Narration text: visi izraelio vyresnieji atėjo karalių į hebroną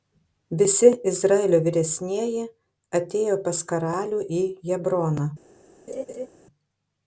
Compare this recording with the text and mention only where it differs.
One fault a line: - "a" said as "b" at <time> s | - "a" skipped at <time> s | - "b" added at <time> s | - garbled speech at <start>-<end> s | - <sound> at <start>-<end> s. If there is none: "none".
- "pas" added at 3.5 s
- laugh at 5.9-6.3 s